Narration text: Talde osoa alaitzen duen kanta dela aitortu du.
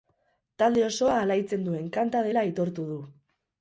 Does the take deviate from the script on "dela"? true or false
false